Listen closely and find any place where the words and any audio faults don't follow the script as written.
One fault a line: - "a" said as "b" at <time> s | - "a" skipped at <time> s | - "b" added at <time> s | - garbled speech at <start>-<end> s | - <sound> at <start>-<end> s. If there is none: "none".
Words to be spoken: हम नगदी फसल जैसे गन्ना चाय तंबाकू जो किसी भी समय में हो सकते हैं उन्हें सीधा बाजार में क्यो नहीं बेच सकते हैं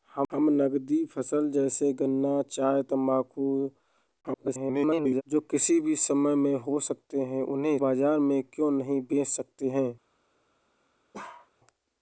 - garbled speech at 4.2-5.2 s
- "सीधा" skipped at 7.8 s
- bark at 11.1-11.5 s